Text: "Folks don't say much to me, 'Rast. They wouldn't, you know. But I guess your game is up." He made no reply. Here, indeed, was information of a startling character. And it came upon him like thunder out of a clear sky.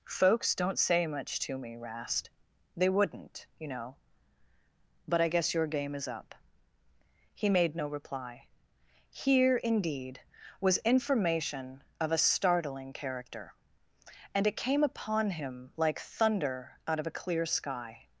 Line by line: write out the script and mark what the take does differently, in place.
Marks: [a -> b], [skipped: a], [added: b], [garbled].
"Folks don't say much to me, 'Rast. They wouldn't, you know. But I guess your game is up." He made no reply. Here, indeed, was information of a startling character. And it came upon him like thunder out of a clear sky.